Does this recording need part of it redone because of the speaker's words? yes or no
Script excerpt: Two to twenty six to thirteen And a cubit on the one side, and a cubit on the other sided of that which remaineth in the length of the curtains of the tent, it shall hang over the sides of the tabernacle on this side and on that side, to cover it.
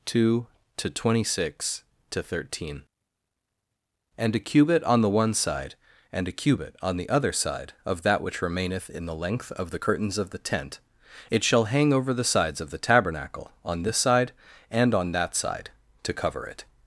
yes